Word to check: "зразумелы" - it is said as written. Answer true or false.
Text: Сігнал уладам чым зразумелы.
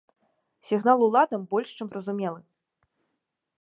true